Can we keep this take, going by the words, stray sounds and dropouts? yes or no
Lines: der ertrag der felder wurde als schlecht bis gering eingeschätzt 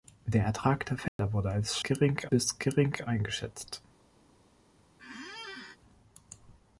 no